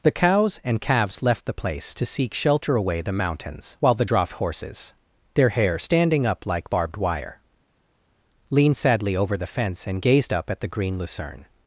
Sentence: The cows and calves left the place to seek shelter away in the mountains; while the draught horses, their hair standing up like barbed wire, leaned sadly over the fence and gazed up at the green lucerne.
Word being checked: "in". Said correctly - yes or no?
no